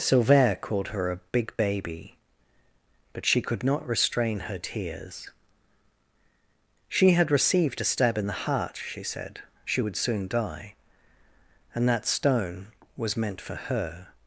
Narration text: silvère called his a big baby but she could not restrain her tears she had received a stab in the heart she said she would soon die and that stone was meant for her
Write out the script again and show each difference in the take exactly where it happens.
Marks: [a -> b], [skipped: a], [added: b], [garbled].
silvère called [his -> her] a big baby but she could not restrain her tears she had received a stab in the heart she said she would soon die and that stone was meant for her